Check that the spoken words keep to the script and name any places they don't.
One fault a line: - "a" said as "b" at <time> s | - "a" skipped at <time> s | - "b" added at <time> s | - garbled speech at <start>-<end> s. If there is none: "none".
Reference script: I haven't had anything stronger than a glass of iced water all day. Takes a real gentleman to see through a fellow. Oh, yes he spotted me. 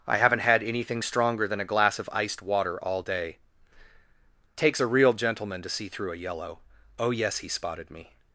- "fellow" said as "yellow" at 6.2 s